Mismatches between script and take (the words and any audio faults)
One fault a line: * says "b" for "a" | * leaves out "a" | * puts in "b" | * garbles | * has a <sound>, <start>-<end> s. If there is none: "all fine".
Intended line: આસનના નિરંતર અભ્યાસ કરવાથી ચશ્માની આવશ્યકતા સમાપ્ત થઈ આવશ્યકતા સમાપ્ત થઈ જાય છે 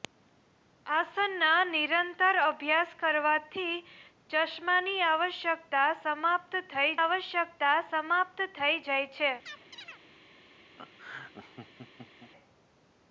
* has a chirp, 9.4-10.0 s
* has a laugh, 10.8-12.3 s